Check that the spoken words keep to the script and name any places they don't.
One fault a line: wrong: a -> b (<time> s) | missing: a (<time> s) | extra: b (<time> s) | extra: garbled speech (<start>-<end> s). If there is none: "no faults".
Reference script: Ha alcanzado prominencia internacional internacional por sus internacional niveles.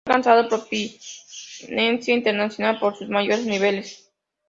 missing: internacional (2.8 s)
wrong: internacional -> mayores (3.1 s)